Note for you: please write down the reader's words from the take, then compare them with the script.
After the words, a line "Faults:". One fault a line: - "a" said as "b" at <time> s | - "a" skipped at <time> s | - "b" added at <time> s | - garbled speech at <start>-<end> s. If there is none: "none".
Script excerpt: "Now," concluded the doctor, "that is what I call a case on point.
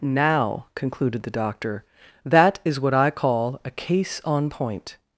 "Now," concluded the doctor, "that is what I call a case on point.
Faults:
none